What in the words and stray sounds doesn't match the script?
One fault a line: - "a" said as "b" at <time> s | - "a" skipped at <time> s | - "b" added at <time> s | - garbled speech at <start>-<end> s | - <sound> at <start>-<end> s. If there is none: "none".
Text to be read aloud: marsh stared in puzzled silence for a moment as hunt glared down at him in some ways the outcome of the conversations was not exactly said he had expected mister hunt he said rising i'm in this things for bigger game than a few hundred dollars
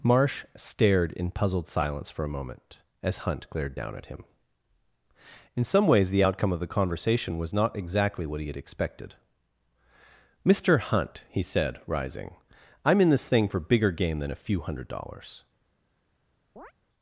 - "conversations" said as "conversation" at 6.7 s
- "said" said as "what" at 8.3 s
- "things" said as "thing" at 13.3 s
- chirp at 16.6-16.7 s